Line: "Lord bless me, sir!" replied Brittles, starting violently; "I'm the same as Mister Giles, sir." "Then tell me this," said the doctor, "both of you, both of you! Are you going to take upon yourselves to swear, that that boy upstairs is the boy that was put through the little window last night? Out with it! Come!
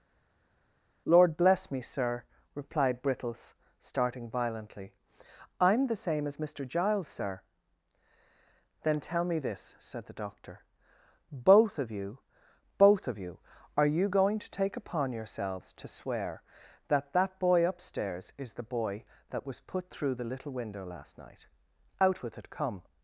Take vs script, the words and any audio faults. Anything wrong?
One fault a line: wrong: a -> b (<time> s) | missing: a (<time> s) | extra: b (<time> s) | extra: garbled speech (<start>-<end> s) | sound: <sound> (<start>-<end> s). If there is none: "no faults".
no faults